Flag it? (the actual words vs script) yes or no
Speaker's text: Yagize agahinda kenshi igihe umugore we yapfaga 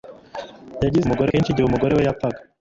yes